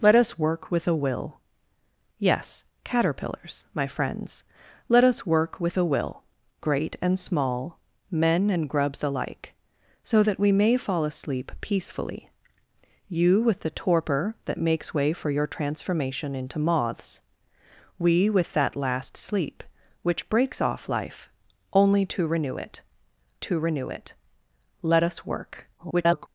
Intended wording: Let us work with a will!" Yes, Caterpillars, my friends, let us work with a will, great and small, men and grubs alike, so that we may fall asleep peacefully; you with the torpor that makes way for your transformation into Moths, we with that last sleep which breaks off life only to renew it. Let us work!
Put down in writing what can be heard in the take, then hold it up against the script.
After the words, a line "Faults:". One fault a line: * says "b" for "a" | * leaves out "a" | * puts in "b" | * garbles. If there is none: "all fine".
Let us work with a will!" Yes, Caterpillars, my friends, let us work with a will, great and small, men and grubs alike, so that we may fall asleep peacefully; you with the torpor that makes way for your transformation into Moths, we with that last sleep which breaks off life only to renew it to renew it. Let us work! [garbled]
Faults:
* puts in "to renew it"
* garbles